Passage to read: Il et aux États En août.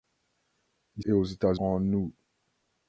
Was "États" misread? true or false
false